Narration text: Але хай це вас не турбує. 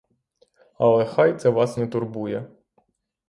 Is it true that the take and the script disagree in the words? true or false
false